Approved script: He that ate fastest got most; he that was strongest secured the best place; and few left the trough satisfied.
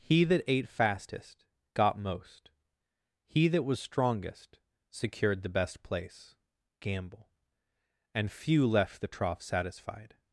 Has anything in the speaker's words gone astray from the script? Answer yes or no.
yes